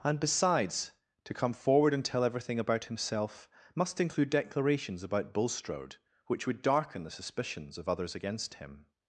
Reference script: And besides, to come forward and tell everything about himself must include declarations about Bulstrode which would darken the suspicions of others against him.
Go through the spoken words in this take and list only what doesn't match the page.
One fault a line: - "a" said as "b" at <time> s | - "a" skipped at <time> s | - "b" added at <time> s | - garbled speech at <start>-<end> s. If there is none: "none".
none